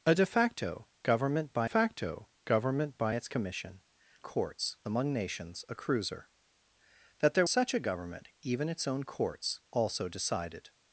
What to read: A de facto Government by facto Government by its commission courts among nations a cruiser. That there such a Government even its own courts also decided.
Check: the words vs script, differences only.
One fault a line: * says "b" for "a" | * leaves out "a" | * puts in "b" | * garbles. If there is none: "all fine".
all fine